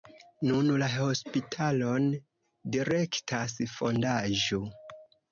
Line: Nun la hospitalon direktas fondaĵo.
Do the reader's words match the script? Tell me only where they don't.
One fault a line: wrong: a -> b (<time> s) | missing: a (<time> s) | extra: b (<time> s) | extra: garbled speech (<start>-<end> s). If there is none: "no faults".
no faults